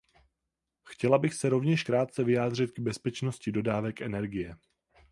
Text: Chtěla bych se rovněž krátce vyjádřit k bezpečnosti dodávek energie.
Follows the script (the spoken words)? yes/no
yes